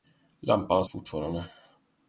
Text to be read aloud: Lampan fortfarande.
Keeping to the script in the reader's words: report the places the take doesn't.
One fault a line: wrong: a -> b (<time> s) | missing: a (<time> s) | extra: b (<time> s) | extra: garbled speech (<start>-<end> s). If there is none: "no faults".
no faults